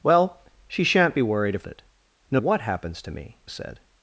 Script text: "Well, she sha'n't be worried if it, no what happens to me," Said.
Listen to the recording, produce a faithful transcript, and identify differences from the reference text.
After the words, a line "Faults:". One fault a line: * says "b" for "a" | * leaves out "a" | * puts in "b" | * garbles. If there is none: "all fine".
"Well, she sha'n't be worried if it, no what happens to me," Said.
Faults:
all fine